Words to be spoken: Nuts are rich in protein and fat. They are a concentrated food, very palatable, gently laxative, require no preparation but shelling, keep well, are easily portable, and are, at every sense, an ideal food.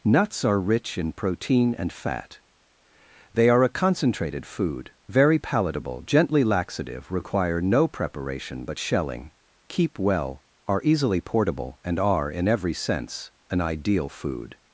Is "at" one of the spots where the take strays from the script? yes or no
yes